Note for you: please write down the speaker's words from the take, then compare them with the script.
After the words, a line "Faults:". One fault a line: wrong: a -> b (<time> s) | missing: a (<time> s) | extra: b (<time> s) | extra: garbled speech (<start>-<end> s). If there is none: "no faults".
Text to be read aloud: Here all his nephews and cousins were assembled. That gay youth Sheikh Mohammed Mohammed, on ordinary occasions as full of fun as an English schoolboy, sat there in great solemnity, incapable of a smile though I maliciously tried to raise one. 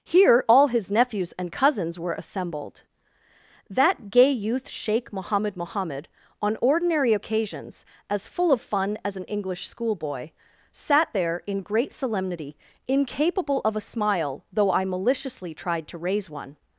Here all his nephews and cousins were assembled. That gay youth Sheikh Mohammed Mohammed, on ordinary occasions as full of fun as an English schoolboy, sat there in great solemnity, incapable of a smile though I maliciously tried to raise one.
Faults:
no faults